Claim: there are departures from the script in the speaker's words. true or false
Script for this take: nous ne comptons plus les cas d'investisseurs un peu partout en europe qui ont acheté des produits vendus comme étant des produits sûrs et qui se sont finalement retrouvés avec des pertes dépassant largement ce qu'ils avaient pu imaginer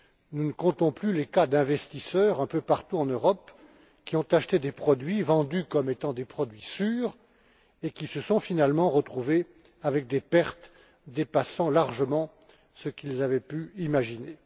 false